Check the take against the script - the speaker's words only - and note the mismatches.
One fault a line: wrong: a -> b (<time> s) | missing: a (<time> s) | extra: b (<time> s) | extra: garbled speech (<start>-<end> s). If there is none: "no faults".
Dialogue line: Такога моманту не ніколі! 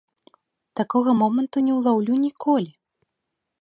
extra: ўлаўлю (1.8 s)